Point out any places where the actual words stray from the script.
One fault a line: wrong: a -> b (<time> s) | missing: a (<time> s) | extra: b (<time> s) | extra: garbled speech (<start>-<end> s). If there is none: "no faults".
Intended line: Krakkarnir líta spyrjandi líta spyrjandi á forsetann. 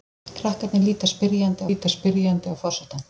no faults